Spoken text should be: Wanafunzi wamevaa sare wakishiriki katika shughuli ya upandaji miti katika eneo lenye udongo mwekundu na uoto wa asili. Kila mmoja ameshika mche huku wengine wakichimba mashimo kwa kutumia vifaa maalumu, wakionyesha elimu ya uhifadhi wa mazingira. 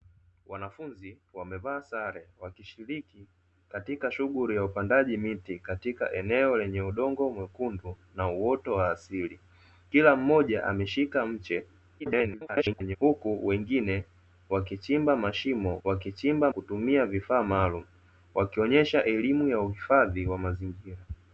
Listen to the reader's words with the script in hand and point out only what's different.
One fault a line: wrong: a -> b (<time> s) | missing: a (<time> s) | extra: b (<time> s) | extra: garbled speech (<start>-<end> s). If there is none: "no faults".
extra: garbled speech (12.0-13.0 s)
wrong: kwa -> wakichimba (15.8 s)